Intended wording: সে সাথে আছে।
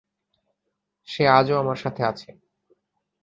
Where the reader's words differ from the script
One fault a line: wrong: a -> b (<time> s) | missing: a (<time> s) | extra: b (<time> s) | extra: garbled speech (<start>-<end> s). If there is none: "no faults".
extra: আজও আমার (1.3 s)